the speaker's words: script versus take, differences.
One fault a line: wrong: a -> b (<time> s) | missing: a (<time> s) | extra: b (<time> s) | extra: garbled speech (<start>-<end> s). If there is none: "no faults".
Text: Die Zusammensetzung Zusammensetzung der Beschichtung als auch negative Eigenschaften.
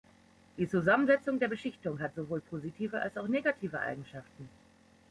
missing: Zusammensetzung (1.4 s)
extra: hat sowohl positive (2.0 s)